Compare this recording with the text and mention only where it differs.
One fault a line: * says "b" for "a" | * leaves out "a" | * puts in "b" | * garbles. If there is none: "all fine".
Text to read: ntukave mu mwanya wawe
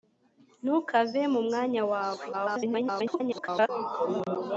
* garbles